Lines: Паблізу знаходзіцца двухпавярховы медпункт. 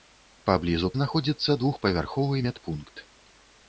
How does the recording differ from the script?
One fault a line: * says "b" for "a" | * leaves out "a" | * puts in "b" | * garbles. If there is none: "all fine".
all fine